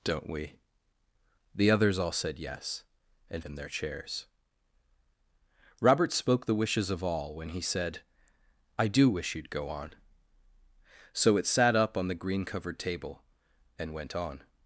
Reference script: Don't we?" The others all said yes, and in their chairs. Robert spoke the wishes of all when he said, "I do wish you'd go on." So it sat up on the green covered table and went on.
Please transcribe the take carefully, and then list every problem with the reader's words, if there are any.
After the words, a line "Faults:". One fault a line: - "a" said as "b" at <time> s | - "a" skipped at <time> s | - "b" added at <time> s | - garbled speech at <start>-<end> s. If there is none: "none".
Don't we?" The others all said yes, and in their chairs. Robert spoke the wishes of all when he said, "I do wish you'd go on." So it sat up on the green covered table and went on.
Faults:
none